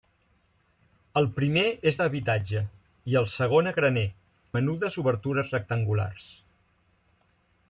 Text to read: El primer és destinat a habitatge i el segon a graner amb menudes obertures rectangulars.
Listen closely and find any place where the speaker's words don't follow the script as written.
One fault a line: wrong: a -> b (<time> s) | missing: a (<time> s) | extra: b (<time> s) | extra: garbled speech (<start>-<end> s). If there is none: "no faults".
missing: destinat (2.0 s)
missing: amb (4.1 s)